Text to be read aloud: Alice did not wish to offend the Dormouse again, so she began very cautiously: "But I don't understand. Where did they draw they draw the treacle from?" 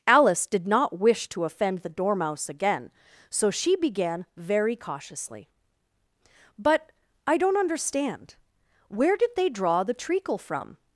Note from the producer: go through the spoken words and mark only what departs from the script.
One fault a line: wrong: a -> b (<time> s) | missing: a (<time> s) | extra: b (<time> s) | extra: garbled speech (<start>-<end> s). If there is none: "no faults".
missing: they draw (9.8 s)